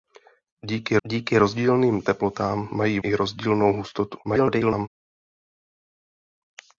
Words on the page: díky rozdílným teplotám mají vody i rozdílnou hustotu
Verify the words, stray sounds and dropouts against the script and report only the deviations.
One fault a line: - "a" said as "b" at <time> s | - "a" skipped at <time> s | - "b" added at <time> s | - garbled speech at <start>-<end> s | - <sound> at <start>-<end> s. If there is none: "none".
- "díky" added at 1.1 s
- "vody" skipped at 3.0 s
- garbled speech at 4.2-4.9 s